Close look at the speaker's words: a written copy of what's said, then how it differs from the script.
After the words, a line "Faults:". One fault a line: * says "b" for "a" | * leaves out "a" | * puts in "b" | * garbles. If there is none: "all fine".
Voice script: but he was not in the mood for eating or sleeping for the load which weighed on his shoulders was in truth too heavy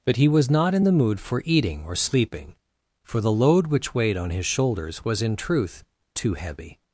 but he was not in the mood for eating or sleeping for the load which weighed on his shoulders was in truth too heavy
Faults:
all fine